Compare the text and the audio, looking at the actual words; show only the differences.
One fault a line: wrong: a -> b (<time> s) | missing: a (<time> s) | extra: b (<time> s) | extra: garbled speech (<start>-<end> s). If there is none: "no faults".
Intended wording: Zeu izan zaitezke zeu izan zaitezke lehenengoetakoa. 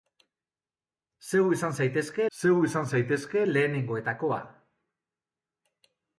no faults